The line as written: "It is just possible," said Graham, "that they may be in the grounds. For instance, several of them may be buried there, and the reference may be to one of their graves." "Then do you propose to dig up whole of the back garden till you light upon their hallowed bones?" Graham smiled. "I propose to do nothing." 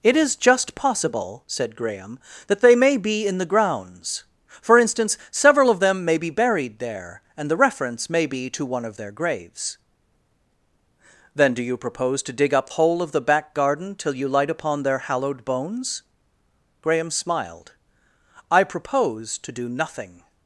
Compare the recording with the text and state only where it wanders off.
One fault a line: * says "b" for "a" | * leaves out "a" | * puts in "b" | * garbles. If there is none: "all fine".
all fine